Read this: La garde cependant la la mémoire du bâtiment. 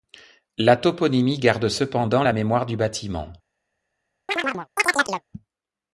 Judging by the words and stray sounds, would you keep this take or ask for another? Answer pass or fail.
fail